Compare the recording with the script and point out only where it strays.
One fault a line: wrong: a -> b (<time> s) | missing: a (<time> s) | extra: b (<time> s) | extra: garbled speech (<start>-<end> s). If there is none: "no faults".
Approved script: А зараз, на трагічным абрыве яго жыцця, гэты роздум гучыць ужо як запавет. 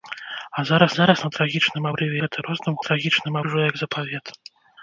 extra: зараз (1.0 s)
missing: яго жыцця (2.2 s)
wrong: гучыць -> трагічным (2.9 s)